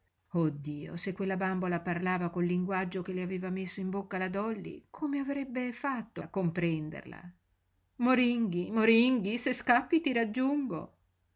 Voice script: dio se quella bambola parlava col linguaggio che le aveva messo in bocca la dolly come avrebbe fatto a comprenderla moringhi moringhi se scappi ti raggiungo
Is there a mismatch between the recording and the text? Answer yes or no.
no